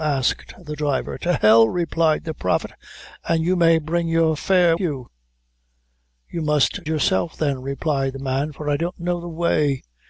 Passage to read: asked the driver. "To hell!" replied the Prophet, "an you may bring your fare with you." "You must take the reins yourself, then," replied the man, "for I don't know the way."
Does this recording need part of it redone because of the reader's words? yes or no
yes